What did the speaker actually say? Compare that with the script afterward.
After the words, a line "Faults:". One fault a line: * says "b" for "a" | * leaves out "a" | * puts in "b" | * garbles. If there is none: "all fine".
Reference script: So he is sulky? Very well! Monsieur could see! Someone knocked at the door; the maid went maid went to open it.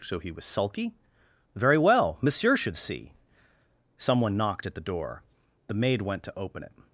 So he was sulky? Very well! Monsieur should see! Someone knocked at the door; the maid went to open it.
Faults:
* says "was" for "is"
* says "should" for "could"
* leaves out "maid went"